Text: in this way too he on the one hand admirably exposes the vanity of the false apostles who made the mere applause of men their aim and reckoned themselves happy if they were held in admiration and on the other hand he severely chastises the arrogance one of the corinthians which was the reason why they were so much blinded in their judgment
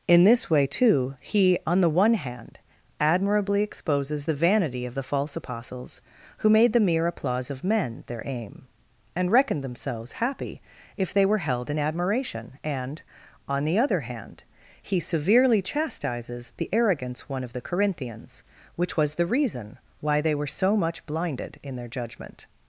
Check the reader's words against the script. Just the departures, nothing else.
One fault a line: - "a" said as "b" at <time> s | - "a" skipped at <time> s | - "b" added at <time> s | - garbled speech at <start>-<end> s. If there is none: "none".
none